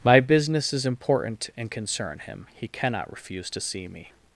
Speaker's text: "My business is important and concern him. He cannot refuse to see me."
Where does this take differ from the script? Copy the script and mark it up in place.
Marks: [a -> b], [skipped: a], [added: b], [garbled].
"My business is important and concern him. He cannot refuse to see me."